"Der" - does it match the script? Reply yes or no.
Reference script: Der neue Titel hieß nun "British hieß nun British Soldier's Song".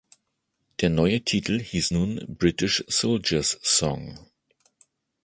yes